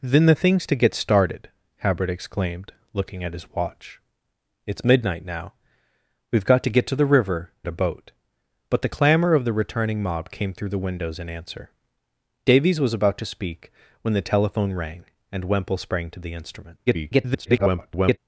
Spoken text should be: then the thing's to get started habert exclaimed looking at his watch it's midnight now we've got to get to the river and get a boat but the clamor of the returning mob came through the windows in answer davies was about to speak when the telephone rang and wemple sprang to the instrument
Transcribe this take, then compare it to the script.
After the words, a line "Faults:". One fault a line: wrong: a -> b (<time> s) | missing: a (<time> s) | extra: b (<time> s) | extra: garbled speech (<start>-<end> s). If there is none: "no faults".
then the thing's to get started habert exclaimed looking at his watch it's midnight now we've got to get to the river a boat but the clamor of the returning mob came through the windows in answer davies was about to speak when the telephone rang and wemple sprang to the instrument [garbled]
Faults:
missing: and get (7.5 s)
extra: garbled speech (16.9-18.2 s)